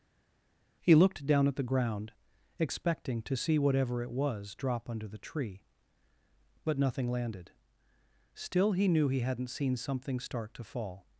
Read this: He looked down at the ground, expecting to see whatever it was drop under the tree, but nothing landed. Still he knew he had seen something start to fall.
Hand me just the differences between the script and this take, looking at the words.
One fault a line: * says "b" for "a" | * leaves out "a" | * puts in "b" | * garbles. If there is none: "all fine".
* says "hadn't" for "had"